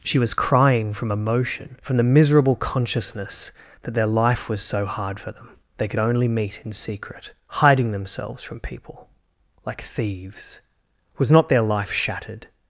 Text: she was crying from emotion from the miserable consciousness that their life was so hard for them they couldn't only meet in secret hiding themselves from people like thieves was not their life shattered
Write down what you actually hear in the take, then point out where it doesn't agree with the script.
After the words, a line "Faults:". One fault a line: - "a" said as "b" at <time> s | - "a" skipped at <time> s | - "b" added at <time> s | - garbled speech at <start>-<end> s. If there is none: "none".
she was crying from emotion from the miserable consciousness that their life was so hard for them they could only meet in secret hiding themselves from people like thieves was not their life shattered
Faults:
- "couldn't" said as "could" at 5.9 s